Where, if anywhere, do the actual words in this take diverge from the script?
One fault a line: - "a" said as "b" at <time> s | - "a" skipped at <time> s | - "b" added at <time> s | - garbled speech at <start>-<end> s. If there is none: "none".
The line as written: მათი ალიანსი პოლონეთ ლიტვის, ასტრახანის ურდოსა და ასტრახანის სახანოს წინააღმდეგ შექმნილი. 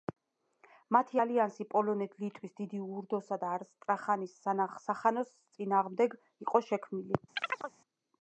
- "ასტრახანის" said as "დიდი" at 2.6 s
- "იყო" added at 6.5 s